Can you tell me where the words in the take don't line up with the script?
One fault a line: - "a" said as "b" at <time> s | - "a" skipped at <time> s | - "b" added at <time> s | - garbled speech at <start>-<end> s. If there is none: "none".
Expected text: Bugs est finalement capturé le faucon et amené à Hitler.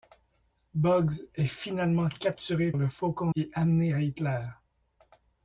none